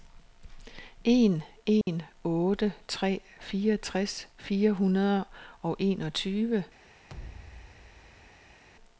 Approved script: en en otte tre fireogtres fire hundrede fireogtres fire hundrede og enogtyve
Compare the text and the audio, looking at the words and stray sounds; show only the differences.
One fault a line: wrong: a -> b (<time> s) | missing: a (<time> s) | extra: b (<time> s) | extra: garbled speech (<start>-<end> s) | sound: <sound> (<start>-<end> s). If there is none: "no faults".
sound: dropout (1.8-1.9 s)
missing: fireogtres fire hundrede (5.2 s)
sound: thud (7.1-8.6 s)